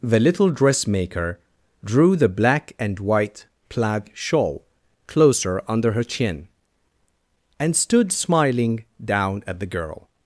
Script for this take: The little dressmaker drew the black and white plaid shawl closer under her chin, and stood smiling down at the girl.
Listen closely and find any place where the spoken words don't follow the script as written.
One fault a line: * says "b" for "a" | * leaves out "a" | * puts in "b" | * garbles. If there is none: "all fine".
all fine